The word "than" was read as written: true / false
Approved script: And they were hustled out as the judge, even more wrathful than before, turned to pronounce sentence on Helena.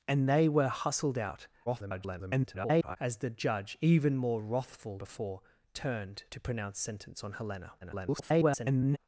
false